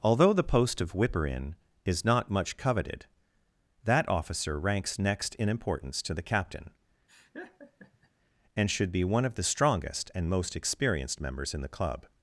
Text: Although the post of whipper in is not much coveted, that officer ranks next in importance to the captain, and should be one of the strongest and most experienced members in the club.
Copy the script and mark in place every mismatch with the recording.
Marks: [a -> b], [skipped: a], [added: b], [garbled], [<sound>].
Although the post of whipper in is not much coveted, that officer ranks next in importance to the captain, [laugh] and should be one of the strongest and most experienced members in the club.